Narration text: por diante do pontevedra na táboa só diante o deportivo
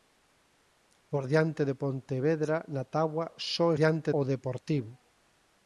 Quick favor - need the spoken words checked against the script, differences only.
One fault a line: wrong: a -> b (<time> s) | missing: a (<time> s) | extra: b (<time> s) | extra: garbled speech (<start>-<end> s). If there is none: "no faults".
no faults